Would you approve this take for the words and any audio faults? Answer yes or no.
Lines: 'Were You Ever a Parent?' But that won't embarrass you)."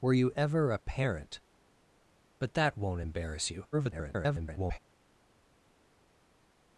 no